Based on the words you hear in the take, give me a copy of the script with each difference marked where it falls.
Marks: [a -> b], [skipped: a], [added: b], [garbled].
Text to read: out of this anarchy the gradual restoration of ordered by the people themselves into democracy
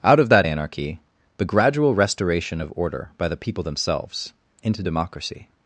out of [this -> that] anarchy the gradual restoration of [ordered -> order] by the people themselves into democracy